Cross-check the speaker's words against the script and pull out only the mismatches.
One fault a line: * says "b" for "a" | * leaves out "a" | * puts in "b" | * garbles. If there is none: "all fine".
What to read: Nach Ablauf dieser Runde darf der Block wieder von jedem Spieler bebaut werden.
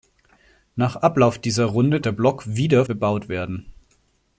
* leaves out "darf"
* leaves out "von jedem Spieler"